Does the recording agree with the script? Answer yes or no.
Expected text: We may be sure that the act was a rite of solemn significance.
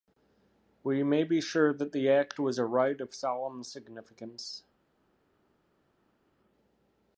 yes